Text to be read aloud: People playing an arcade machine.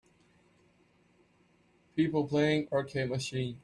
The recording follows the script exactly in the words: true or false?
false